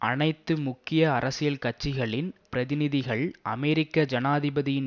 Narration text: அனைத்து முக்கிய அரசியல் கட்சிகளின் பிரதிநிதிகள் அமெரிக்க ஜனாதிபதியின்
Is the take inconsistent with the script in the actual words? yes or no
no